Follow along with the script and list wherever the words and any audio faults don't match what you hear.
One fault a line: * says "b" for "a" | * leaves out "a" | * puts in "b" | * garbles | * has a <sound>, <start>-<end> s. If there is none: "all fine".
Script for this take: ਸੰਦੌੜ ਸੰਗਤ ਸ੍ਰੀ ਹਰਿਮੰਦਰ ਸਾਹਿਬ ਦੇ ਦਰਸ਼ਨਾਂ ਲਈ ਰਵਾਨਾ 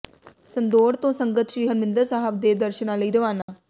* puts in "ਤੋਂ"
* has a dropout, 3.4-3.5 s